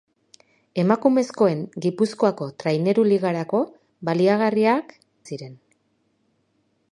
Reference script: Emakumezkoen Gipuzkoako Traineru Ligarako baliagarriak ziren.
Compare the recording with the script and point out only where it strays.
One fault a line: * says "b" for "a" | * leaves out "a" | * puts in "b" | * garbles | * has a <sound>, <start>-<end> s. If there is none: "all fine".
all fine